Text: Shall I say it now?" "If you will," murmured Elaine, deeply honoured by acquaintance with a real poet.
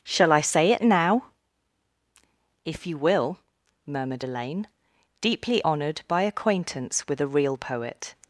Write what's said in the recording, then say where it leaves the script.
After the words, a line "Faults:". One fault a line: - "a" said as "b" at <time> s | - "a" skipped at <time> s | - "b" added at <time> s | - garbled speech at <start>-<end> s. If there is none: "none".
Shall I say it now?" "If you will," murmured Elaine, deeply honoured by acquaintance with a real poet.
Faults:
none